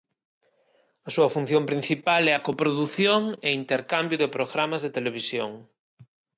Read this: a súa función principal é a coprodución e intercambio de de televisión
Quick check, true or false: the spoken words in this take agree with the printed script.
false